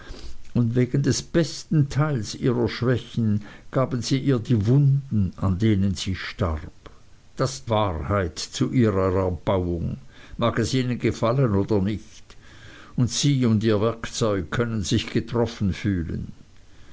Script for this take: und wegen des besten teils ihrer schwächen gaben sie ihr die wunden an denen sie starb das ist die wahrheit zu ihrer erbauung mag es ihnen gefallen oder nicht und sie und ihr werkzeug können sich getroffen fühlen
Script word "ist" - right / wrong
wrong